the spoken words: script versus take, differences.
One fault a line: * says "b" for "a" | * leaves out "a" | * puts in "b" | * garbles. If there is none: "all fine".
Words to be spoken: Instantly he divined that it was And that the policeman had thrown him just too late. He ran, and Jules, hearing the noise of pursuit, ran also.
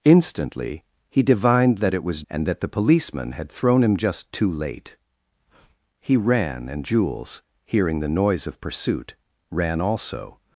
all fine